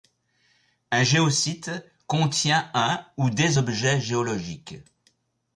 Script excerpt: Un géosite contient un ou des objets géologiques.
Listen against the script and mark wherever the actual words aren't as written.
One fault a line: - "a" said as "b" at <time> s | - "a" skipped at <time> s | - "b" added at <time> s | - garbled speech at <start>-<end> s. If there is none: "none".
none